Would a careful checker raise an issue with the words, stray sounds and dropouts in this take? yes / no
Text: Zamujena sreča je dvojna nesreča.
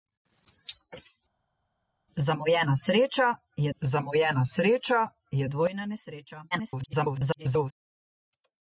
yes